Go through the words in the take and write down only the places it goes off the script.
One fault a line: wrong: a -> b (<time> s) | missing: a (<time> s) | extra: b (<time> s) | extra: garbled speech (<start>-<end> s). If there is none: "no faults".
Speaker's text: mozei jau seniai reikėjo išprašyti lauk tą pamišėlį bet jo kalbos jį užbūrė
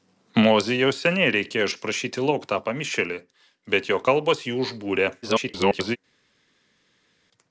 extra: garbled speech (5.2-6.0 s)